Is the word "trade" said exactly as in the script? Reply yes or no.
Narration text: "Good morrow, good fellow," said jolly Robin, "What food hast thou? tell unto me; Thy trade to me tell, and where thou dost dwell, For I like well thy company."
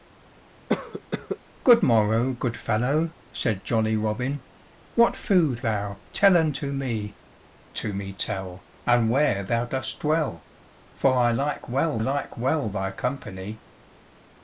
no